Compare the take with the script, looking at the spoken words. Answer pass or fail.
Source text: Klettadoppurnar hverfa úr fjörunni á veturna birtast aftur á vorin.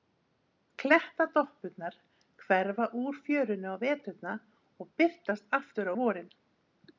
fail